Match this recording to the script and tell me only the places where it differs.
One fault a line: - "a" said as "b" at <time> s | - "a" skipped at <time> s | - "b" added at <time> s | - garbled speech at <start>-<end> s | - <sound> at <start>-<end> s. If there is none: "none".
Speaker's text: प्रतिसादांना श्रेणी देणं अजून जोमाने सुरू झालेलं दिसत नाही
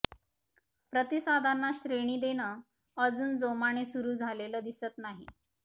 none